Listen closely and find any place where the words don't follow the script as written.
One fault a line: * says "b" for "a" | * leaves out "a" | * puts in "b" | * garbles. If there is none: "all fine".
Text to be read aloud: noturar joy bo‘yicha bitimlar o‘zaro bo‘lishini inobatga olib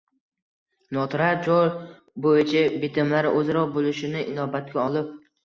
all fine